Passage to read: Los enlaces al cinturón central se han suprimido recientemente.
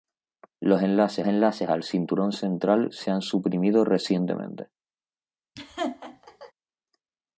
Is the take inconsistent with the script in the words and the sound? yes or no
yes